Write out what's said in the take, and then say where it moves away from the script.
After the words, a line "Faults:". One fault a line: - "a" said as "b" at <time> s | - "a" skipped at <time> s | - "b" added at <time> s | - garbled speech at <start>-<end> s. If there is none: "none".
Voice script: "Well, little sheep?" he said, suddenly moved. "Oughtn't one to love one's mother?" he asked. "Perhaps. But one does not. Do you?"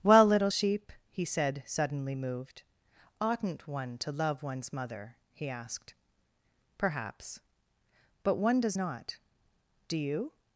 "Well, little sheep?" he said, suddenly moved. "Oughtn't one to love one's mother?" he asked. "Perhaps. But one does not. Do you?"
Faults:
none